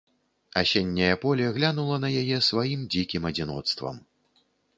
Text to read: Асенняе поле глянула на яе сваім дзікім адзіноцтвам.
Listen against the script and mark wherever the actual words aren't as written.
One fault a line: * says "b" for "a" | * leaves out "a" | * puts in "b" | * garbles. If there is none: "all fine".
all fine